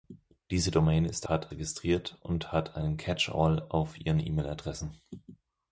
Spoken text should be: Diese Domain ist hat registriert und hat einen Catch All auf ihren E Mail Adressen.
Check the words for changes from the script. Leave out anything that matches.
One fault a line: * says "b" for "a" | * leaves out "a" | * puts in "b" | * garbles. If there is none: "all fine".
all fine